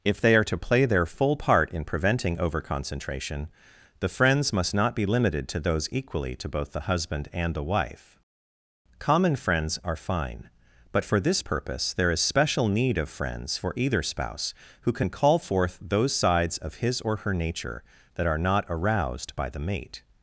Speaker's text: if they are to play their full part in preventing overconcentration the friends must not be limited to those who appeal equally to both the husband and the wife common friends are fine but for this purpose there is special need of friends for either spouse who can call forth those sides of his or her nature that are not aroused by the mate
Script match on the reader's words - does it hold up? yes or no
no